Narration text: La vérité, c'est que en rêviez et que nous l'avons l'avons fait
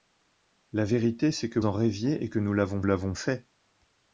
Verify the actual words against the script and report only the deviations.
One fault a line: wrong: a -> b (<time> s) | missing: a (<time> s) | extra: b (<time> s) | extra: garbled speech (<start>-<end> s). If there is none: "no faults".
no faults